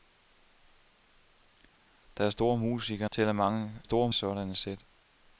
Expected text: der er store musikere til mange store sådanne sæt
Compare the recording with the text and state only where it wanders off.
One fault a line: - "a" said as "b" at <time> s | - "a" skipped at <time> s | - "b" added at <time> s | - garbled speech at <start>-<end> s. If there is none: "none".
none